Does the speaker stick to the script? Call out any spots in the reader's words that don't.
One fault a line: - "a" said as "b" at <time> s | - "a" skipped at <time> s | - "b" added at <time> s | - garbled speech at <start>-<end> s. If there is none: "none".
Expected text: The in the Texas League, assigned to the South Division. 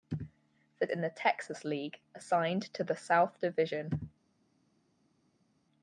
none